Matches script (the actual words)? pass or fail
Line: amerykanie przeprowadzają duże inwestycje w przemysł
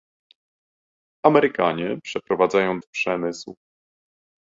fail